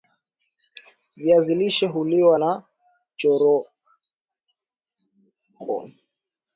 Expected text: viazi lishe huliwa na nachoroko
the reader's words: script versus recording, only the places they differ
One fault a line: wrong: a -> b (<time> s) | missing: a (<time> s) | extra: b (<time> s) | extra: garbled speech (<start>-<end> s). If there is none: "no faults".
no faults